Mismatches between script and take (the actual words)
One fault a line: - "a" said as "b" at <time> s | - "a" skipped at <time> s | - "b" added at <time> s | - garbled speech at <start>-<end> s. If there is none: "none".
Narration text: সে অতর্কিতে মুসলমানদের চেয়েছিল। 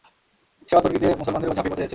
- "উপর ঝাঁপিয়ে পড়তে" added at 1.4 s